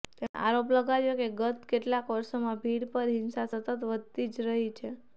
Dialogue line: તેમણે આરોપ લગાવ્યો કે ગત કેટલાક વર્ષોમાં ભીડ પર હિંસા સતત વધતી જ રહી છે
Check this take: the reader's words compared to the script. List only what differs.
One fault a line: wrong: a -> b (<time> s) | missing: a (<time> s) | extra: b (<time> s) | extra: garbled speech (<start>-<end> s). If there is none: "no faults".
no faults